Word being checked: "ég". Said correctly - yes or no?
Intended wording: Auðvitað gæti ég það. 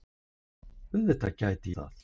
no